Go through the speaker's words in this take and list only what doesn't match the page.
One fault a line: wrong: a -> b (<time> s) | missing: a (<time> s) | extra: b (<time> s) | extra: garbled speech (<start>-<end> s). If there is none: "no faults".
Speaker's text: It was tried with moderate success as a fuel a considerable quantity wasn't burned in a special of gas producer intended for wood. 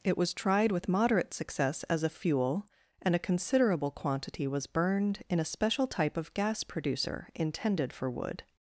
extra: and (3.0 s)
wrong: wasn't -> was (4.5 s)
extra: type (5.9 s)